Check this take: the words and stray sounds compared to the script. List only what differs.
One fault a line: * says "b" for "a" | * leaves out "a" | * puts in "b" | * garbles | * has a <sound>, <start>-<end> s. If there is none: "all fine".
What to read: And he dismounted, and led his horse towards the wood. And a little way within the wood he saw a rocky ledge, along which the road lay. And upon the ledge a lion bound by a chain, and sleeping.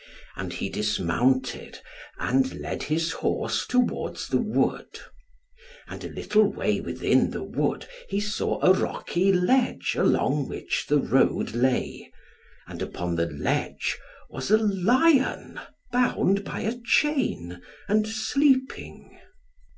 * puts in "was"